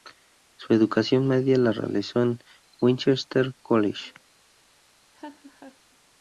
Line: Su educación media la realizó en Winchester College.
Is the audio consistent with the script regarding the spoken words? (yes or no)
yes